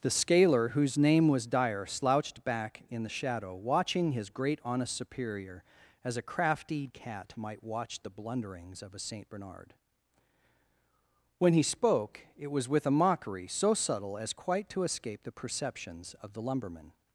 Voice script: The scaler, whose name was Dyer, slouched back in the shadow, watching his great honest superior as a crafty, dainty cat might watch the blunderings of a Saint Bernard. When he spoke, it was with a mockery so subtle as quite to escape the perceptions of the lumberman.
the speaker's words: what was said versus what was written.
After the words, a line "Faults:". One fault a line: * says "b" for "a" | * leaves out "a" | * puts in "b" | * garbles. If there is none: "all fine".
The scaler, whose name was Dyer, slouched back in the shadow, watching his great honest superior as a crafty, cat might watch the blunderings of a Saint Bernard. When he spoke, it was with a mockery so subtle as quite to escape the perceptions of the lumberman.
Faults:
* leaves out "dainty"